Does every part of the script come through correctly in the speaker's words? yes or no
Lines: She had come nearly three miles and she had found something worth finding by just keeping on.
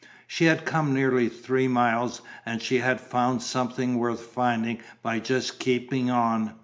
yes